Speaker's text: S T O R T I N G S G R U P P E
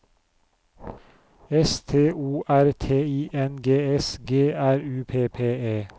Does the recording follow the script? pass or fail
pass